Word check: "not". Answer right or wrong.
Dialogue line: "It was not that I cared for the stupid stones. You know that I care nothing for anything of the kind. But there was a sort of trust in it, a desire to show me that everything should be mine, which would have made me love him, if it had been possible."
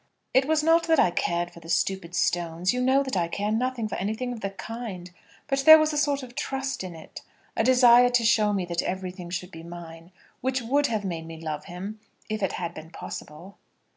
right